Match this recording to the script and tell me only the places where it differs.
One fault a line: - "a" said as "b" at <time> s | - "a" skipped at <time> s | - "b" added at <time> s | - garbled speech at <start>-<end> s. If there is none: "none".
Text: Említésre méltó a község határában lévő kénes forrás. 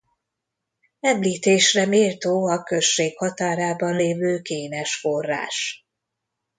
none